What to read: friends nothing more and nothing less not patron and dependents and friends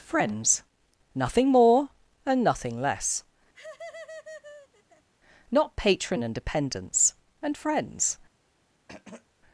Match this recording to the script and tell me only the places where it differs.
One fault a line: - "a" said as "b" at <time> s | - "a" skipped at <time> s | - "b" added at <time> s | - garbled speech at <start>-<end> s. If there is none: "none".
none